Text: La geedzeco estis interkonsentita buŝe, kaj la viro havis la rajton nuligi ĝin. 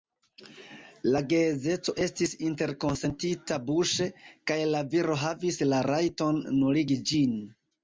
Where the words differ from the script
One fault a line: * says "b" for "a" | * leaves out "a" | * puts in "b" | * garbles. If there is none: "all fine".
all fine